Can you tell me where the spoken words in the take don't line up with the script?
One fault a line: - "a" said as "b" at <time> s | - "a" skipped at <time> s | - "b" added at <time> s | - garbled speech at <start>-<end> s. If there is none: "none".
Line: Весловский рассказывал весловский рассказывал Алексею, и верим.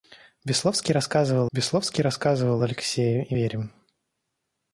none